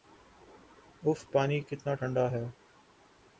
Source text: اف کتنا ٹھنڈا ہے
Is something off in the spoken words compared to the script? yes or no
yes